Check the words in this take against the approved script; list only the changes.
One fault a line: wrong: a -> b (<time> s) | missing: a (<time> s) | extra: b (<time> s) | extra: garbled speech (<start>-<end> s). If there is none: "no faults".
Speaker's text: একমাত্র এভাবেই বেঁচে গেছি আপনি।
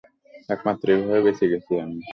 wrong: আপনি -> আমি (1.8 s)